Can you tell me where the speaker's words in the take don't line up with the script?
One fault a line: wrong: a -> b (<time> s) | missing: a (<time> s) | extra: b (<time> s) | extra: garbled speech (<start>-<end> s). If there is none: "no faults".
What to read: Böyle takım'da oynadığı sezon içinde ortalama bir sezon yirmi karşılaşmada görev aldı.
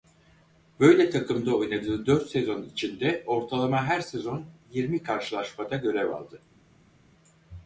extra: dört (2.0 s)
wrong: bir -> her (3.9 s)